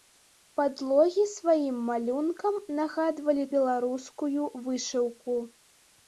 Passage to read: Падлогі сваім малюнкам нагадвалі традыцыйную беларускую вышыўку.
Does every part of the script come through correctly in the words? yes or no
no